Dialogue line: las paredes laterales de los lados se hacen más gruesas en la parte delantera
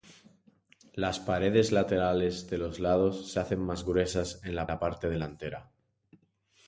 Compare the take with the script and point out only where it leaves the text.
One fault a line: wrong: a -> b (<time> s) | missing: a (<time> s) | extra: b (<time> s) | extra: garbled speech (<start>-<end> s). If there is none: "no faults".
extra: la (4.7 s)